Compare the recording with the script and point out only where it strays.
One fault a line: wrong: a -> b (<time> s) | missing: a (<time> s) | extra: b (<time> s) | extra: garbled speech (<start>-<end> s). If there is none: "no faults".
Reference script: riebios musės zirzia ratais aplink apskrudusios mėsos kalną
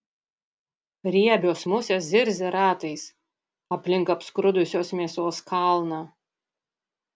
no faults